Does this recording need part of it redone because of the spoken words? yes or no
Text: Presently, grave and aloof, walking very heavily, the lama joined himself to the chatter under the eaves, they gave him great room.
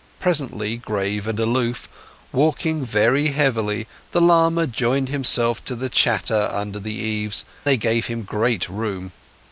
no